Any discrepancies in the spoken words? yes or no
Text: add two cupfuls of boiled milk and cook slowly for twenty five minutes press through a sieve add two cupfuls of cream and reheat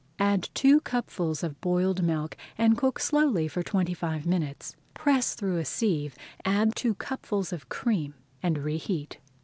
no